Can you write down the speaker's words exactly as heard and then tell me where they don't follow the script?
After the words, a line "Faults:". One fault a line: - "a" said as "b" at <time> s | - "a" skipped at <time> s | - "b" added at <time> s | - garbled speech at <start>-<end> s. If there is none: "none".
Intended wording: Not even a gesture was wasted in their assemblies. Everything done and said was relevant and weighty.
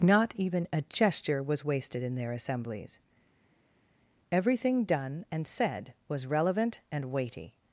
Not even a gesture was wasted in their assemblies. Everything done and said was relevant and weighty.
Faults:
none